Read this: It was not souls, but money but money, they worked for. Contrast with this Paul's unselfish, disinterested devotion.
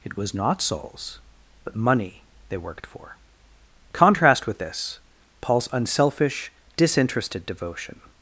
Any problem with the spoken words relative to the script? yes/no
yes